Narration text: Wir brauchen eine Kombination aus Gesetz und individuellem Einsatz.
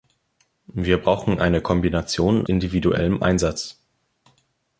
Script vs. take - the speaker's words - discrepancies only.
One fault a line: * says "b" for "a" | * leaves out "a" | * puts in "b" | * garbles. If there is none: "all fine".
* leaves out "aus Gesetz und"